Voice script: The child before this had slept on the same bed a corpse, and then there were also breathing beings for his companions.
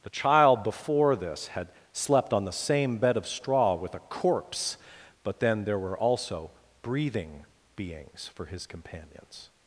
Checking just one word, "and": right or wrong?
wrong